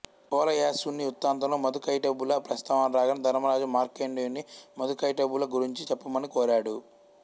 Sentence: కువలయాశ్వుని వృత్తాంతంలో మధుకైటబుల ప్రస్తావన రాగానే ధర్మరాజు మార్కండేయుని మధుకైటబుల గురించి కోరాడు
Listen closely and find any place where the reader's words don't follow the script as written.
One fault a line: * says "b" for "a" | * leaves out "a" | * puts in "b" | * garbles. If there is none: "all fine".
* puts in "చెప్పమని"